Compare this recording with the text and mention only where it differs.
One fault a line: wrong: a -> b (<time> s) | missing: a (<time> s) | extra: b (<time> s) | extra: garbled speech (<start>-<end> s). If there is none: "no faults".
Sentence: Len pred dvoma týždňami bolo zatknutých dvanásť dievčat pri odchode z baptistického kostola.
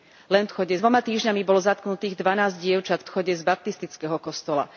wrong: pred -> odchode (0.4 s)
missing: pri (3.0 s)